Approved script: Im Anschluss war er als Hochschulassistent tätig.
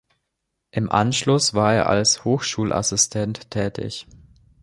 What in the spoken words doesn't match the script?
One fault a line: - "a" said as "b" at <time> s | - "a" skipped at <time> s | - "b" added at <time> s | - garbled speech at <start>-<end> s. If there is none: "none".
none